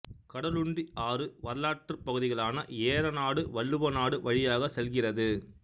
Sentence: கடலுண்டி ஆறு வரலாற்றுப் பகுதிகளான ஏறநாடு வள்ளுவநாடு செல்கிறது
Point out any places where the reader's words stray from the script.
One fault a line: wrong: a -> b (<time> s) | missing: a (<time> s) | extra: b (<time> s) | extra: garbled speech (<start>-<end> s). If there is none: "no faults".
extra: வழியாகச் (4.2 s)